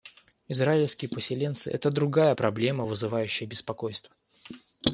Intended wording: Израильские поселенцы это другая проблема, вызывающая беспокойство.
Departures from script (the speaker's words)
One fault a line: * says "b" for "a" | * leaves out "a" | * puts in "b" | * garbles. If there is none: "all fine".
all fine